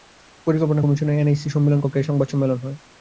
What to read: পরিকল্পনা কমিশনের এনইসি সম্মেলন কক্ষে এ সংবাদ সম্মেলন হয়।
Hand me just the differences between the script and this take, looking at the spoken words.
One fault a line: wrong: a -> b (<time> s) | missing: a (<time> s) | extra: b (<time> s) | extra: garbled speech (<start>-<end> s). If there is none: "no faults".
no faults